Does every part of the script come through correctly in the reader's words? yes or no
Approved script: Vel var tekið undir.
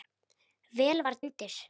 no